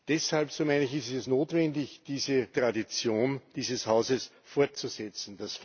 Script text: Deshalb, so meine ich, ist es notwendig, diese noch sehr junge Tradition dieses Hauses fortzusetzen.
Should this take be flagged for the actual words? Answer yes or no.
yes